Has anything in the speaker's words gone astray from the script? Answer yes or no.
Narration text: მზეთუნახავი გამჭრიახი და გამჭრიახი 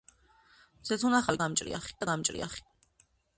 no